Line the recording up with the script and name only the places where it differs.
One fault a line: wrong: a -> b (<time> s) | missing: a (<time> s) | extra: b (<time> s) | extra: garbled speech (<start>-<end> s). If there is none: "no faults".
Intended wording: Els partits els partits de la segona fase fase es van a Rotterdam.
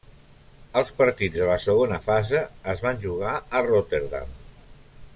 missing: els partits (1.4 s)
missing: fase (2.4 s)
extra: jugar (3.1 s)